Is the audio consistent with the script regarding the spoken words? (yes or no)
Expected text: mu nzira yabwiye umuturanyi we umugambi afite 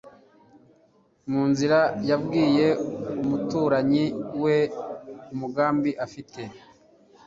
yes